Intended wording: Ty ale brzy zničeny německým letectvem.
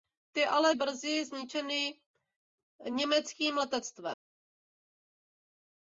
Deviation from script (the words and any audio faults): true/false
false